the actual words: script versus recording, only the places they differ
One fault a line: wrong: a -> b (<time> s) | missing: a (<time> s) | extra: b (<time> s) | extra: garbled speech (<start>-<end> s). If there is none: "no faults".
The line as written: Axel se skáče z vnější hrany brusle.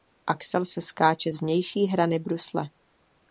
no faults